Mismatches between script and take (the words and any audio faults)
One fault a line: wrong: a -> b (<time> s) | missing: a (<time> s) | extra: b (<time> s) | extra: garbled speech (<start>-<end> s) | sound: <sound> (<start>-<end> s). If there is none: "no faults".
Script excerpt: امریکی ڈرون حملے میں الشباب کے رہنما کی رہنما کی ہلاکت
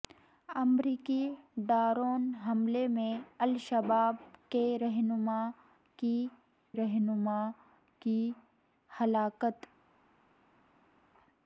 no faults